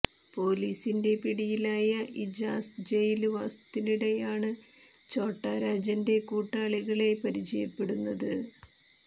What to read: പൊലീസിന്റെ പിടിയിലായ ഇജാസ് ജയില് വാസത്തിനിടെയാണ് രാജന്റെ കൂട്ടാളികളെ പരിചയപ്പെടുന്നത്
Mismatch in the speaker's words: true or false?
true